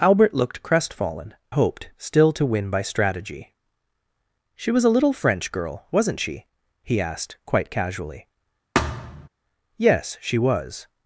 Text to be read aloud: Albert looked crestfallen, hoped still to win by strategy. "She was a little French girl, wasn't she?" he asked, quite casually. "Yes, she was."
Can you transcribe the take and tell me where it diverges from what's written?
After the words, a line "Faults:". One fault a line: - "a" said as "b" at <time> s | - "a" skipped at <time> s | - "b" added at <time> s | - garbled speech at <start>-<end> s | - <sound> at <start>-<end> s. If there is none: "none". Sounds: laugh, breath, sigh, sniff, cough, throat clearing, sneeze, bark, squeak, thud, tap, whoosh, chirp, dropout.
Albert looked crestfallen, hoped still to win by strategy. "She was a little French girl, wasn't she?" he asked, quite casually. "Yes, she was."
Faults:
- thud at 8.7-9.3 s